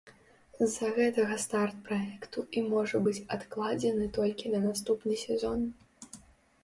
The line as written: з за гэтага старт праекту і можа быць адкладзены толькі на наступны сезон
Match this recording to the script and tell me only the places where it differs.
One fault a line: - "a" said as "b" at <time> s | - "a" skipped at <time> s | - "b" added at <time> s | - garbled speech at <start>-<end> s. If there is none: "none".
none